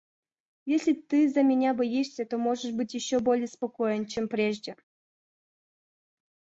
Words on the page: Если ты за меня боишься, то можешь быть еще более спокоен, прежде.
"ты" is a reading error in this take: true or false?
false